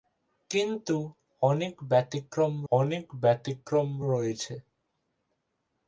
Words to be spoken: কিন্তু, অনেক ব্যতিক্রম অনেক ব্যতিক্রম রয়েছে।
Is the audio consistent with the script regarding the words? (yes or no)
yes